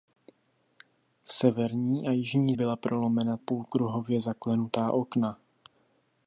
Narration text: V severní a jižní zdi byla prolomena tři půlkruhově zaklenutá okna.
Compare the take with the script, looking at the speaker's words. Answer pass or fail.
fail